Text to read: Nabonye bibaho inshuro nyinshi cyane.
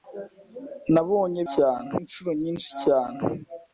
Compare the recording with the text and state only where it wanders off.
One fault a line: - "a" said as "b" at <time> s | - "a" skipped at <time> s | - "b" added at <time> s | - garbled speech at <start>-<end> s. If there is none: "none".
- "bibaho" said as "cyane" at 1.5 s